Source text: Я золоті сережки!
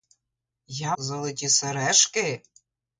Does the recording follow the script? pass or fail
pass